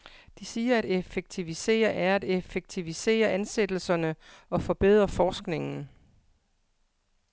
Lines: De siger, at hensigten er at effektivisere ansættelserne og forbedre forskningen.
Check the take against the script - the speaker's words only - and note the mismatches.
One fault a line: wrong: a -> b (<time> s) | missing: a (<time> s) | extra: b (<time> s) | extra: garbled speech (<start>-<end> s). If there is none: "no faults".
wrong: hensigten -> effektivisere (0.8 s)